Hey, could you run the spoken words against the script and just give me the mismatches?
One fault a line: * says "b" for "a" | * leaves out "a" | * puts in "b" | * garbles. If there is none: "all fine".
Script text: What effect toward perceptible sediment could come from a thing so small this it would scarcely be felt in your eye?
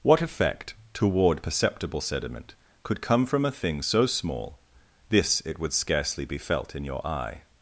all fine